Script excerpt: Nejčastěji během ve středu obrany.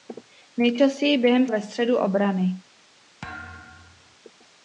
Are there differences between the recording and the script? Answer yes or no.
no